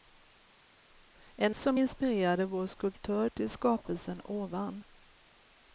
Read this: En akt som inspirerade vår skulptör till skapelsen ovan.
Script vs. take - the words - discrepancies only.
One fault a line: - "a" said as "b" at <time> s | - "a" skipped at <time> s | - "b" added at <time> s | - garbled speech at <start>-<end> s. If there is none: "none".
- "akt" skipped at 1.6 s